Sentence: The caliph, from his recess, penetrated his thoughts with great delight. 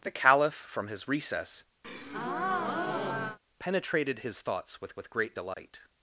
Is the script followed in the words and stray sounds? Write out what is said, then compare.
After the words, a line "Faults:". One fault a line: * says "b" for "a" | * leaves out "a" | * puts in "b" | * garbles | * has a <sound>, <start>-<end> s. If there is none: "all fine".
The caliph, from his recess, penetrated his thoughts with with great delight.
Faults:
* has a breath, 1.8-3.4 s
* puts in "with"
* has a dropout, 5.5-5.6 s